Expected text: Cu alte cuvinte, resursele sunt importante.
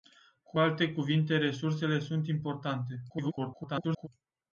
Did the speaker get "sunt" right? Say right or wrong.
right